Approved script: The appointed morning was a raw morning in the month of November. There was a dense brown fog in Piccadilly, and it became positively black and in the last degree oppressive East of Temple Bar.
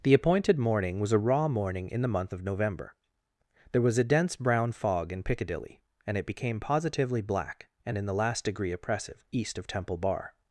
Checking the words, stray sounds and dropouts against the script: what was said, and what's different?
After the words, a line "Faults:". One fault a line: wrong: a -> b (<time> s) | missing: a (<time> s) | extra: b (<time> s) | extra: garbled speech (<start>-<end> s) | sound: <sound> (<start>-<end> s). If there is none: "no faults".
The appointed morning was a raw morning in the month of November. There was a dense brown fog in Piccadilly, and it became positively black and in the last degree oppressive East of Temple Bar.
Faults:
no faults